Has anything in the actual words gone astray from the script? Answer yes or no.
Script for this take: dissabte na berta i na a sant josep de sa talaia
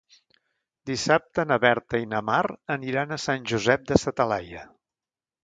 yes